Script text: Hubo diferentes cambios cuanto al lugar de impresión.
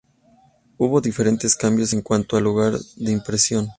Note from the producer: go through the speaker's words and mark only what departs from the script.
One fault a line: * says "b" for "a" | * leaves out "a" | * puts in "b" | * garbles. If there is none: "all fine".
* puts in "en"